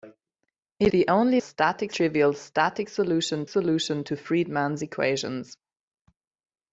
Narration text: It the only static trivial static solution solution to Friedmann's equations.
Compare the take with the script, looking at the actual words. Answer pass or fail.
pass